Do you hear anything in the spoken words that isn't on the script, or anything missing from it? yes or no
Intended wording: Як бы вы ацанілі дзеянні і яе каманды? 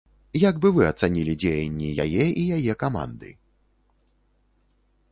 yes